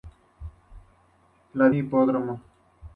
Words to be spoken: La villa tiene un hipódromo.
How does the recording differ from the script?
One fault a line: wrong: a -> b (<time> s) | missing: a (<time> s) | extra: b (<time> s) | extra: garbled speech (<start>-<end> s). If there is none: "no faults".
missing: villa tiene un (1.7 s)